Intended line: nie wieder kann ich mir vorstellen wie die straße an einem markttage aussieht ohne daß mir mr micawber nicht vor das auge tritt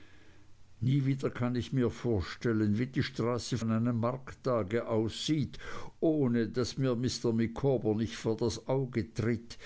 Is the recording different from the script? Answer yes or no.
no